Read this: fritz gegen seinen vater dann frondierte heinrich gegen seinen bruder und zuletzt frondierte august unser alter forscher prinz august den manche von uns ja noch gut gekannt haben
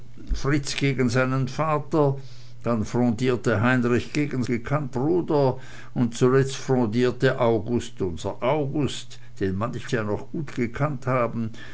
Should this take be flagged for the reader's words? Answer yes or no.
yes